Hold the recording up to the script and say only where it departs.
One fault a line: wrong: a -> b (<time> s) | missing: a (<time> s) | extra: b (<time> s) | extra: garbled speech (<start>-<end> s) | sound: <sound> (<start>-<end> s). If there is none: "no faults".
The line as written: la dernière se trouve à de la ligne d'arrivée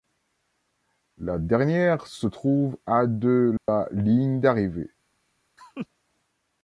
sound: dropout (3.6-3.7 s)
sound: laugh (5.6-5.9 s)